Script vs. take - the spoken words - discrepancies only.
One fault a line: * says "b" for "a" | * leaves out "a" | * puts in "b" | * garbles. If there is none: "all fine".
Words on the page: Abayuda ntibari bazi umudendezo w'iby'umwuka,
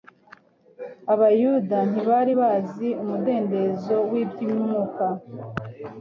all fine